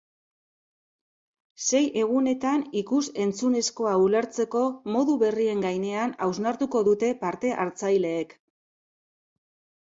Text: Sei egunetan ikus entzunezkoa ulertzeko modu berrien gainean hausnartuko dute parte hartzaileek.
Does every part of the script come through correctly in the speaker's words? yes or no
yes